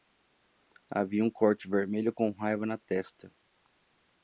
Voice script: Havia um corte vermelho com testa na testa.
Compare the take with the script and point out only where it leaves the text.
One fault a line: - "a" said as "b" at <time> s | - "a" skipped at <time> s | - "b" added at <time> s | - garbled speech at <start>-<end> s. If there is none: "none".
- "testa" said as "raiva" at 2.3 s